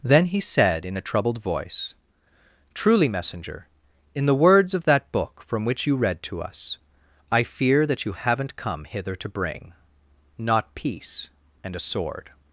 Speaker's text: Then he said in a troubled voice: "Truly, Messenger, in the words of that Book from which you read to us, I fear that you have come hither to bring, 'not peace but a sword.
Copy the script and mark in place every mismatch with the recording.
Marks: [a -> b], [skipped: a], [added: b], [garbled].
Then he said in a troubled voice: "Truly, Messenger, in the words of that Book from which you read to us, I fear that you [have -> haven't] come hither to bring, 'not peace [but -> and] a sword.